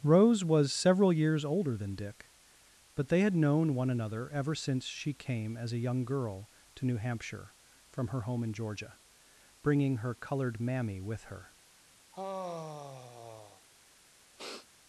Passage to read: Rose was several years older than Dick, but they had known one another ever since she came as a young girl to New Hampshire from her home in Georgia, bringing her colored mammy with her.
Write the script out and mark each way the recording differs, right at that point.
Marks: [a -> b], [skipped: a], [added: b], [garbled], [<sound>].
Rose was several years older than Dick, but they had known one another ever since she came as a young girl to New Hampshire from her home in Georgia, bringing her colored mammy with her. [sigh] [sniff]